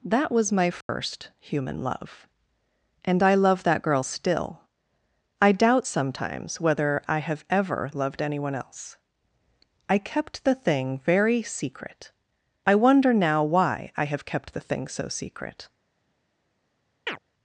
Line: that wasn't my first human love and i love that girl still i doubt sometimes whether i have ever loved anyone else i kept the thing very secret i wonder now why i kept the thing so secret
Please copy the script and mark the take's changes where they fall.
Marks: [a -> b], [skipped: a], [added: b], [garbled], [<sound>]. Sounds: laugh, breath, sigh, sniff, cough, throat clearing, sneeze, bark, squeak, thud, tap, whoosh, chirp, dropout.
that [wasn't -> was] my first [dropout] human love and i love that girl still i doubt sometimes whether i have ever loved anyone else i kept the thing very secret i wonder now why i [added: have] kept the thing so secret [chirp]